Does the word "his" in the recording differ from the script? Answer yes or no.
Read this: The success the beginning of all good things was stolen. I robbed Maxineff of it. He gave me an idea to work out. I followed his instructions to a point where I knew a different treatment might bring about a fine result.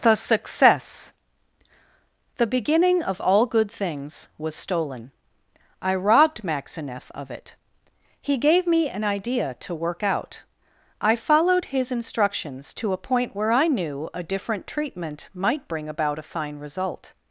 no